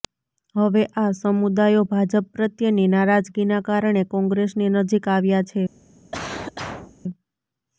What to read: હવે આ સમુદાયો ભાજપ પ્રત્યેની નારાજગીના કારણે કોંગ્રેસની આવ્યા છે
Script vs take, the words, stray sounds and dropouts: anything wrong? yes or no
yes